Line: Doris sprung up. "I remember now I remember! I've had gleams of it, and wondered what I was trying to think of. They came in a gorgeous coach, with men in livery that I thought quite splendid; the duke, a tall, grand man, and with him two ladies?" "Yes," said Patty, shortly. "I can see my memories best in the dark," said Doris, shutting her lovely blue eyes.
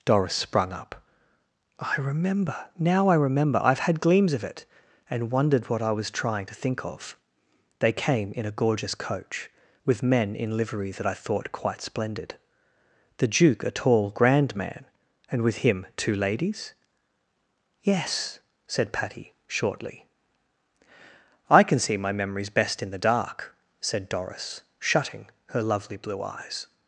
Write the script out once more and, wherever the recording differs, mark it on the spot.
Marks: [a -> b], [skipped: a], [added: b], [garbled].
Doris sprung up. "I remember now I remember! I've had gleams of it, and wondered what I was trying to think of. They came in a gorgeous coach, with men in livery that I thought quite splendid; the duke, a tall, grand man, and with him two ladies?" "Yes," said Patty, shortly. "I can see my memories best in the dark," said Doris, shutting her lovely blue eyes.